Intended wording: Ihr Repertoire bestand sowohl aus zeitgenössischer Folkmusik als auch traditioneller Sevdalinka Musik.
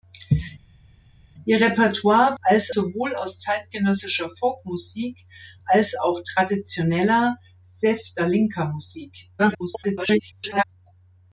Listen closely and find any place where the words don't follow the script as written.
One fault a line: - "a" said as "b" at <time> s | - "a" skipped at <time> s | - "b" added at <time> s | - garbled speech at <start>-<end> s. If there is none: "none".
- "bestand" said as "als" at 2.4 s
- garbled speech at 9.4-10.6 s